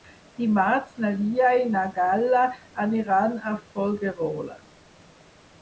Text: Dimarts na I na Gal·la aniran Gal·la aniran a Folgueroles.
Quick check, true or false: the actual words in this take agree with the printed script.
false